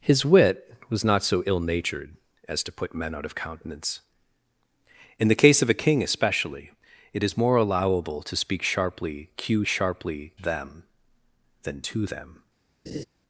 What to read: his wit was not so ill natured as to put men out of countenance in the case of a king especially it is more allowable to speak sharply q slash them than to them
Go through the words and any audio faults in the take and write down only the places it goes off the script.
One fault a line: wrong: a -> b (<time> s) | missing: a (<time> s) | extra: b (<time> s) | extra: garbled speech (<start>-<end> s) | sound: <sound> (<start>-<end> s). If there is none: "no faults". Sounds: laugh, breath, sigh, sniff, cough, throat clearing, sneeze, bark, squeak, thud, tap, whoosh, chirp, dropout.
wrong: slash -> sharply (9.7 s)
sound: laugh (12.9-13.0 s)